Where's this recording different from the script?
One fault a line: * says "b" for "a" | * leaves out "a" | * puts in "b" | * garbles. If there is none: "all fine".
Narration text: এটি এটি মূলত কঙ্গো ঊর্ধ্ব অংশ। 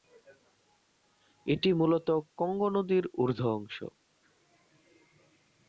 * leaves out "এটি"
* puts in "নদীর"